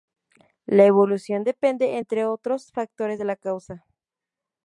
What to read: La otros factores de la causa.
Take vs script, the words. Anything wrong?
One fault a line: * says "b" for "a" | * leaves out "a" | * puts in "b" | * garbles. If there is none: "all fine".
* puts in "evolución depende entre"